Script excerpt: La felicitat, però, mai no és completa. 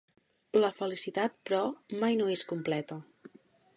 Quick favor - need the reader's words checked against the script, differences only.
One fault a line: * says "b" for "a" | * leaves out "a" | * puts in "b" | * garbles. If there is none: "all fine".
all fine